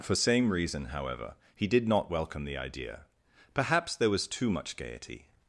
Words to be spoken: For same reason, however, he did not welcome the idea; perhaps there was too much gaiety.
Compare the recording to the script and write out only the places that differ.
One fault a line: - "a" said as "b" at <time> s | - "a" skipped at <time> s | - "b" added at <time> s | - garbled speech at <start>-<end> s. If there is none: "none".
none